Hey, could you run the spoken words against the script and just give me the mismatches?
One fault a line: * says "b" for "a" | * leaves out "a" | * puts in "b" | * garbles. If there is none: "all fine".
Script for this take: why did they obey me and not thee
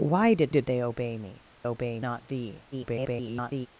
* puts in "did"
* says "obey" for "and"
* garbles